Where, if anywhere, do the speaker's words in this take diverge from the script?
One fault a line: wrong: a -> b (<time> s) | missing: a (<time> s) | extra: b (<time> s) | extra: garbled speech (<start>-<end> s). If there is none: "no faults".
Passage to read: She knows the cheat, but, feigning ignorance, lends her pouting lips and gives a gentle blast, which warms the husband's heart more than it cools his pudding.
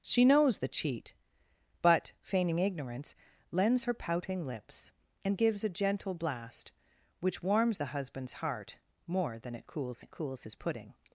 extra: it cools (10.0 s)